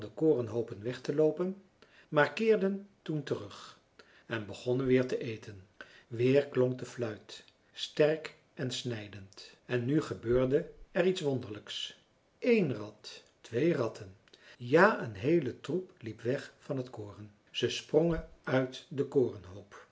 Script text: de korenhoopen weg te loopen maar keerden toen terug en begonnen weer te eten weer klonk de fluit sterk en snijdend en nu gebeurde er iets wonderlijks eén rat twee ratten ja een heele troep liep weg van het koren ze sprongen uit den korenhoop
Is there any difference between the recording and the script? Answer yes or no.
no